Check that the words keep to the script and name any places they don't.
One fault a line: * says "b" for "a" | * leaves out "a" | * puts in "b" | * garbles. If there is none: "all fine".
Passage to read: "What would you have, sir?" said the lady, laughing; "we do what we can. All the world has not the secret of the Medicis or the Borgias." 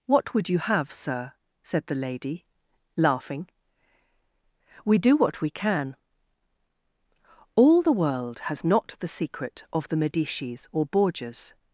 * leaves out "the"